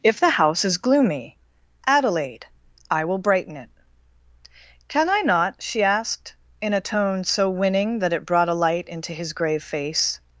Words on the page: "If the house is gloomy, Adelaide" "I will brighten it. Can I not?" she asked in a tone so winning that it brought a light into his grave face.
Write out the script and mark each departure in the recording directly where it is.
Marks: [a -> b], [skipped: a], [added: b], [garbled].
"If the house is gloomy, Adelaide" "I will brighten it. Can I not?" she asked in a tone so winning that it brought a light into his grave face.